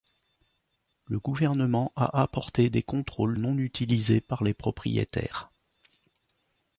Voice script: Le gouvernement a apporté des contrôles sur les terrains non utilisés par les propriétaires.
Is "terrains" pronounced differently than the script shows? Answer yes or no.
yes